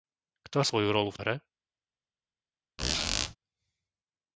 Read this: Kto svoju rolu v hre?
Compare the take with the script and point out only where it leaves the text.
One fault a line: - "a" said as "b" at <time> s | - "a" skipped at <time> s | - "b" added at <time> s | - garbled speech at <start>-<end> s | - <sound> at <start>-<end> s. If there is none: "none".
- squeak at 2.8-3.4 s